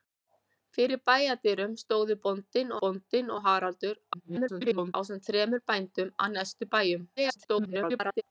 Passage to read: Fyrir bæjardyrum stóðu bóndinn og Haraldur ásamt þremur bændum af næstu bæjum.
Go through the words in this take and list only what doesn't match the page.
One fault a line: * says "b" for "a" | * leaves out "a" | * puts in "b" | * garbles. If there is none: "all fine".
* puts in "bóndinn"
* garbles
* garbles